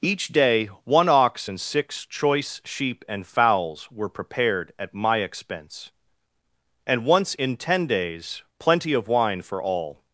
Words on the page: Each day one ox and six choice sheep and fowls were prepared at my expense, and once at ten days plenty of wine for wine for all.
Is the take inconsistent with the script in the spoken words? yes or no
yes